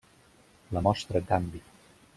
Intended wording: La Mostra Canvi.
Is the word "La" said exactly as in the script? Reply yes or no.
yes